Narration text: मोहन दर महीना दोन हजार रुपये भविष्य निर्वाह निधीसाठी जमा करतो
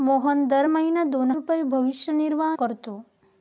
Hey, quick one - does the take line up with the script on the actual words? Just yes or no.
no